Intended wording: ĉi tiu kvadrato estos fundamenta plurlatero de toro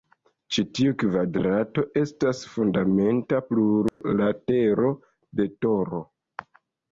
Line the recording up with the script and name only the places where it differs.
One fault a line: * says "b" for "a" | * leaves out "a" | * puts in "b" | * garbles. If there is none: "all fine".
* says "estas" for "estos"